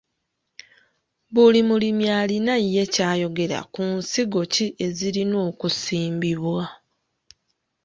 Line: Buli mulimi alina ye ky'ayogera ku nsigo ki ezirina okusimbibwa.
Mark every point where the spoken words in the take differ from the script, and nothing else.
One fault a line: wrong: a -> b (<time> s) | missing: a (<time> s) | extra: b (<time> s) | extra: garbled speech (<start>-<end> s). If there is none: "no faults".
no faults